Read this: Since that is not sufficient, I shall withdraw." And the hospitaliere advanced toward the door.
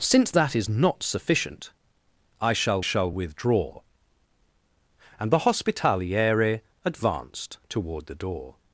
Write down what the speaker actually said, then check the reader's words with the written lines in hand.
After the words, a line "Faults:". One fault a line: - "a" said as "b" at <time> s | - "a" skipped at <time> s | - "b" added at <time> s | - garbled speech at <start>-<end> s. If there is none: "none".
Since that is not sufficient, I shall shall withdraw." And the hospitaliere advanced toward the door.
Faults:
- "shall" added at 2.8 s